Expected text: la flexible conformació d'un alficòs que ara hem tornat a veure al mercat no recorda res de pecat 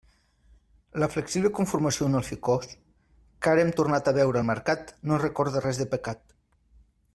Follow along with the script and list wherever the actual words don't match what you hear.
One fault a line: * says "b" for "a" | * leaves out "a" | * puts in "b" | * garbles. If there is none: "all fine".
all fine